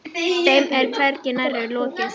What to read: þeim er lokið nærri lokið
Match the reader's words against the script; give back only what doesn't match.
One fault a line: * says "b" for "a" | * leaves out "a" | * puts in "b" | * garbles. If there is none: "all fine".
* says "hvergi" for "lokið"